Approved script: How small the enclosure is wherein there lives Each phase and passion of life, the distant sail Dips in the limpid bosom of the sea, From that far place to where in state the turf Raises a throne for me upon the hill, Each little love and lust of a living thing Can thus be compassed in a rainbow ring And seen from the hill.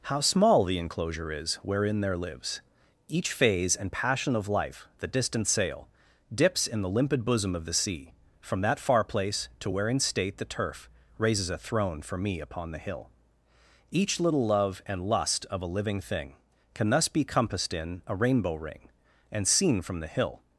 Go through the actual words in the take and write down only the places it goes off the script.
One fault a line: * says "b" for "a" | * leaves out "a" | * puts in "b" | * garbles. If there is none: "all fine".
all fine